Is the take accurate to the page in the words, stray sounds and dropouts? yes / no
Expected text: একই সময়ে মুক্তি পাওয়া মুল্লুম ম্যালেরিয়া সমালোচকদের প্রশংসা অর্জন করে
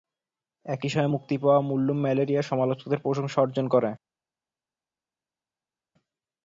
yes